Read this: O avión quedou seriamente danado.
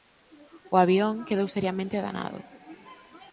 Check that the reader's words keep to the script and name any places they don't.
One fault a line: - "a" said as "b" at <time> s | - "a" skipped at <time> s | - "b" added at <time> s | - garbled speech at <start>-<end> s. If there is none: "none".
none